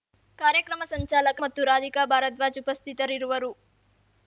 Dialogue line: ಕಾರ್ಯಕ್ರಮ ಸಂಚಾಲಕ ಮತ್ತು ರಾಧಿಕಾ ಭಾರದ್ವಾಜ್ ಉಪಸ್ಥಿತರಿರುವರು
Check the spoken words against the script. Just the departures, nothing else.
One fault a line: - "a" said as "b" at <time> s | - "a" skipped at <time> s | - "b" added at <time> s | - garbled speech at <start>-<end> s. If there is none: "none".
none